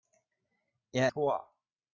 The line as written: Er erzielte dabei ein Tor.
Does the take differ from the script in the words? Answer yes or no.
yes